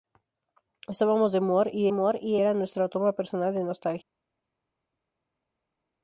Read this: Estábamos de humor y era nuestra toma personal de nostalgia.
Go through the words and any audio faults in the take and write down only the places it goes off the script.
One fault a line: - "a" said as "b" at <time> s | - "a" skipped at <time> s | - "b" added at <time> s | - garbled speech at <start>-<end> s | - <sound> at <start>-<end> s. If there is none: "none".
- "humor y" added at 1.9 s